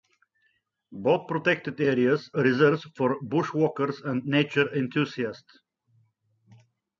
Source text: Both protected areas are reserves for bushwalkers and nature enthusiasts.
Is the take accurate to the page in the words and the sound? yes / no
no